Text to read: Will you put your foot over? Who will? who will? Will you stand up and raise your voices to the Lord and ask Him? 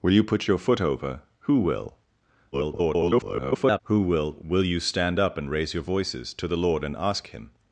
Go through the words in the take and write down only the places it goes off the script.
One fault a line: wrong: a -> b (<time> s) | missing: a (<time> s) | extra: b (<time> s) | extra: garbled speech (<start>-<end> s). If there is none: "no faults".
extra: garbled speech (2.5-3.8 s)